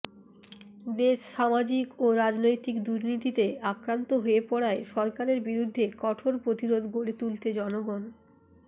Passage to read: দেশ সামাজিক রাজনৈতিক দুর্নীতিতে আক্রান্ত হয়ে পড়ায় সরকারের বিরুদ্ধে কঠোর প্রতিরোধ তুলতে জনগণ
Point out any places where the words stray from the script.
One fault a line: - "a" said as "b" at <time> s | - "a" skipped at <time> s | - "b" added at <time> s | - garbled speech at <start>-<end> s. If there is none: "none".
- "ও" added at 2.0 s
- "গড়ে" added at 6.9 s